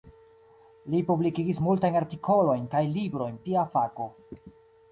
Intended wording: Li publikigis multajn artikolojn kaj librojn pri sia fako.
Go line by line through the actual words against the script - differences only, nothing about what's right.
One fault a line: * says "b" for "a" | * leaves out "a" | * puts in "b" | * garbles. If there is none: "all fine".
* leaves out "pri"